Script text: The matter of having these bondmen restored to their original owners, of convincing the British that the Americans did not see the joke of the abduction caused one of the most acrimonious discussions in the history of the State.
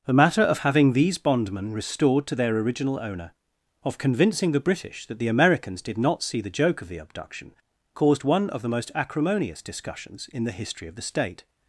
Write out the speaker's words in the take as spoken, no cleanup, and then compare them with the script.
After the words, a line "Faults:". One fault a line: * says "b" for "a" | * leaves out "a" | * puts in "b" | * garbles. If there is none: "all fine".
The matter of having these bondmen restored to their original owner, of convincing the British that the Americans did not see the joke of the abduction caused one of the most acrimonious discussions in the history of the State.
Faults:
* says "owner" for "owners"